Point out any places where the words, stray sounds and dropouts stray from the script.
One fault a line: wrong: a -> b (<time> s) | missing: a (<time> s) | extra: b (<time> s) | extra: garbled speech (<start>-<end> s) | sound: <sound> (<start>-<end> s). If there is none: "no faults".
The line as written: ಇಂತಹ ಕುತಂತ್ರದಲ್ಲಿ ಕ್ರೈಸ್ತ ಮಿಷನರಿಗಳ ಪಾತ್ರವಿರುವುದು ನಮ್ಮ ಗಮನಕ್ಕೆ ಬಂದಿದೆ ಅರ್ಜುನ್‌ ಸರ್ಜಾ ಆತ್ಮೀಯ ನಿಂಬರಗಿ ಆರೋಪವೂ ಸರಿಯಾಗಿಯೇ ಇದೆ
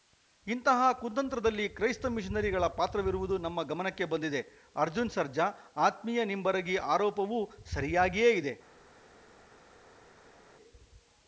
no faults